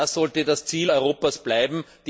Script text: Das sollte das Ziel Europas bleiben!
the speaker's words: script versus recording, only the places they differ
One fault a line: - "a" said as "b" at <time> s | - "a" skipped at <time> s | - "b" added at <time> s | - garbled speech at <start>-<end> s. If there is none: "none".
none